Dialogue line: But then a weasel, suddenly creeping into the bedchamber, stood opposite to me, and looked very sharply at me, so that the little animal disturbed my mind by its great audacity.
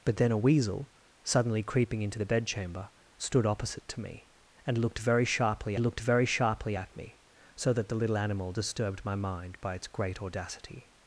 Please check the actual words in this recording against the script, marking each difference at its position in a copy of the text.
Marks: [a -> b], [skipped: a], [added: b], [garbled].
But then a weasel, suddenly creeping into the bedchamber, stood opposite to me, and looked very sharply [added: looked very sharply] at me, so that the little animal disturbed my mind by its great audacity.